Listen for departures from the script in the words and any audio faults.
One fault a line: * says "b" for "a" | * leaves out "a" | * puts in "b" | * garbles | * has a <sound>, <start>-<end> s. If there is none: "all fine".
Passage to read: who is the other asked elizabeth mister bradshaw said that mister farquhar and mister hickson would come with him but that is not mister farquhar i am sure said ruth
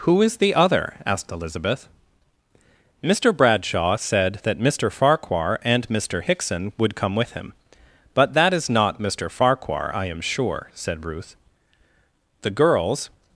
* puts in "the girls"